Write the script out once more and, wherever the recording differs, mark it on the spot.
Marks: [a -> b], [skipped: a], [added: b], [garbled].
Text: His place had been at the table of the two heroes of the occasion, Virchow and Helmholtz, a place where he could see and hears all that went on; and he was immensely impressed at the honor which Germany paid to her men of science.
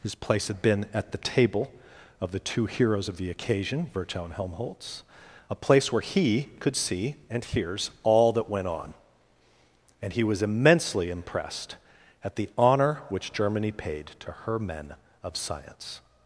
His place had been at the table of the two heroes of the occasion, Virchow and Helmholtz, a place where he could see and hears all that went on; and he was immensely impressed at the honor which Germany paid to her men of science.